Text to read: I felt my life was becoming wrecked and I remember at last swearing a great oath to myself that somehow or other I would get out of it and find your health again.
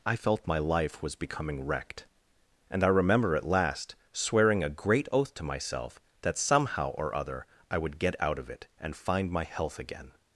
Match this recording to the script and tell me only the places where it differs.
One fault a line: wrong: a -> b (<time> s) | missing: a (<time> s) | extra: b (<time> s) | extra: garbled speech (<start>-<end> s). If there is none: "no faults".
wrong: your -> my (9.3 s)